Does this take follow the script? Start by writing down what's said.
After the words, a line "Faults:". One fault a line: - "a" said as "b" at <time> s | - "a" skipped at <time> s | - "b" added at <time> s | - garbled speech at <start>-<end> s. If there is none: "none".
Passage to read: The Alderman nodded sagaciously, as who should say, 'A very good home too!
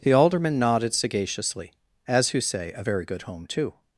The Alderman nodded sagaciously, as who say, 'A very good home too!
Faults:
- "should" skipped at 2.4 s